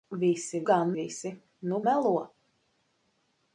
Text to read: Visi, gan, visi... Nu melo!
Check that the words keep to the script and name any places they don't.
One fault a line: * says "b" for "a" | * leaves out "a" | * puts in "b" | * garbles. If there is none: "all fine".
all fine